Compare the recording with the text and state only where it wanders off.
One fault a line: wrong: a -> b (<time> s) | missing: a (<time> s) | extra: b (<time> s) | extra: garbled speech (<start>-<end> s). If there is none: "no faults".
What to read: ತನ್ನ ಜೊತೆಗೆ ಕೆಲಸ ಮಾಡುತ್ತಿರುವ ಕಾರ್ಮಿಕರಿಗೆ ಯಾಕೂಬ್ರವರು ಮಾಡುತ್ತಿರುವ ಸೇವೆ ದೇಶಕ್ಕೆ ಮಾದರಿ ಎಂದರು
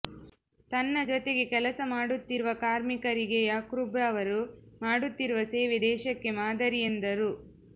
no faults